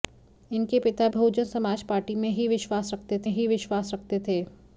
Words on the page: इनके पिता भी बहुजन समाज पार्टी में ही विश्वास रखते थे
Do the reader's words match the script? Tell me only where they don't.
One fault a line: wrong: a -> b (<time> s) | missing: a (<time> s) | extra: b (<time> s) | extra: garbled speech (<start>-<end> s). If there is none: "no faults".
missing: भी (1.1 s)
extra: ही विश्वास रखते (3.3 s)